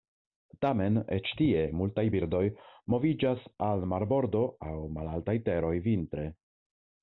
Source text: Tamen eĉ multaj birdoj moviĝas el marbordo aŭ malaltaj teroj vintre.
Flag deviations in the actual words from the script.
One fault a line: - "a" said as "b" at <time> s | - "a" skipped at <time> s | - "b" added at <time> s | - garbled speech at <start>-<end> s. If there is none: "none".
- "tie" added at 1.4 s
- "el" said as "al" at 3.7 s